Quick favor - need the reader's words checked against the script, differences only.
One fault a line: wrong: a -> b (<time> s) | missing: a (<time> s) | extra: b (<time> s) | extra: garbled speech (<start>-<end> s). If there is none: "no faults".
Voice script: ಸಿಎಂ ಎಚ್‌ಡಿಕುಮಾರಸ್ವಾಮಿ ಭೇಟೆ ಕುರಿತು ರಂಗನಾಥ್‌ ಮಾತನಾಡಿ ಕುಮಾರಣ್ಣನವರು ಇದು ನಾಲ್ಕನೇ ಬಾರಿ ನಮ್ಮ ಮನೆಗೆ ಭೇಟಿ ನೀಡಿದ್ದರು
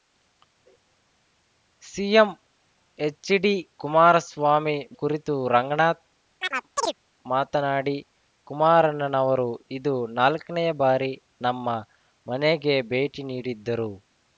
missing: ಭೇಟೆ (4.7 s)